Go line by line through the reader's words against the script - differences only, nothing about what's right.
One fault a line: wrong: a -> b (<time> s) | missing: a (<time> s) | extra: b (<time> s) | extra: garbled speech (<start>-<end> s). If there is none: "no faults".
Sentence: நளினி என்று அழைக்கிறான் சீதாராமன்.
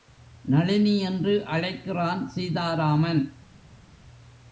no faults